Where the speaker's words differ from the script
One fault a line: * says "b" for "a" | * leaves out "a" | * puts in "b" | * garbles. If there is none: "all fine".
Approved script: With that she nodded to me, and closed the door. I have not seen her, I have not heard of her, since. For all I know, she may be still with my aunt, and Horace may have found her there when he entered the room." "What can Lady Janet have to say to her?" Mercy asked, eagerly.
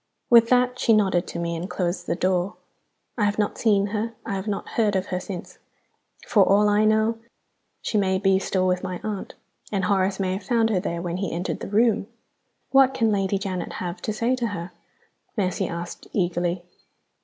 all fine